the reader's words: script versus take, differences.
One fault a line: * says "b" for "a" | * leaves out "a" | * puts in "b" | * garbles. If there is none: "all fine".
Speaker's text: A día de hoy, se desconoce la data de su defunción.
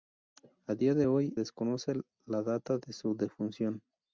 * leaves out "se"